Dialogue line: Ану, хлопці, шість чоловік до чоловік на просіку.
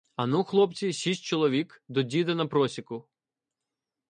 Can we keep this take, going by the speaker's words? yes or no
no